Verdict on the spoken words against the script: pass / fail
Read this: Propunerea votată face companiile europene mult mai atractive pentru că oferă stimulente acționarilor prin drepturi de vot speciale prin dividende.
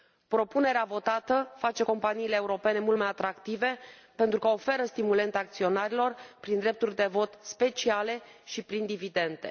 fail